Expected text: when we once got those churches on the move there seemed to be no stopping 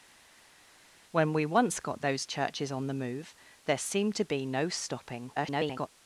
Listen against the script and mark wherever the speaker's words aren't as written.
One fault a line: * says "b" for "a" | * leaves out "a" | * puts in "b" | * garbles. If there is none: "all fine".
* garbles